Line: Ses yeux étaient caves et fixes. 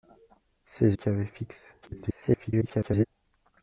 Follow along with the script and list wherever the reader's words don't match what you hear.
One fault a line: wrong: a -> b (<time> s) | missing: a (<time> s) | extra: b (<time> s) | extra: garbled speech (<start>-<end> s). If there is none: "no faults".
missing: yeux étaient (1.0 s)
extra: garbled speech (1.8-3.0 s)